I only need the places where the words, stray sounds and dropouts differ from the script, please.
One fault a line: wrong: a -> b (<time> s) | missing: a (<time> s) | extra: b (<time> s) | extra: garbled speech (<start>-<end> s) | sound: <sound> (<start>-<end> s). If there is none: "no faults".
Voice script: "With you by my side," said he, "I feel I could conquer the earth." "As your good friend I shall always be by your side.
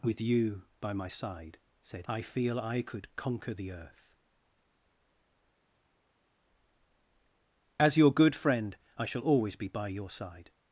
missing: he (2.1 s)